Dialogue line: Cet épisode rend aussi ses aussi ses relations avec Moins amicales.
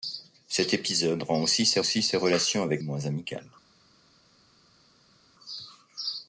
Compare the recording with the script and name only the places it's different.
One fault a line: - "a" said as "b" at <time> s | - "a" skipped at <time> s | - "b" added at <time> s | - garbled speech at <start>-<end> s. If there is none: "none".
none